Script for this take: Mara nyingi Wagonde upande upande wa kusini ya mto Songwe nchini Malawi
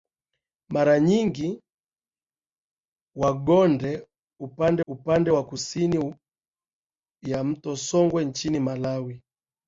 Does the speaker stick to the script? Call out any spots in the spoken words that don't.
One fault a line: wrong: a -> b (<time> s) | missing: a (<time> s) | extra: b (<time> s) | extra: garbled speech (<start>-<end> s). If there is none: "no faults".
no faults